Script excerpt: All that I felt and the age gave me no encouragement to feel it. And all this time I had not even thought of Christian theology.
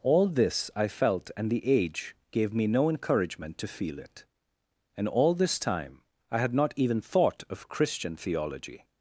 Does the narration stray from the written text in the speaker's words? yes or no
yes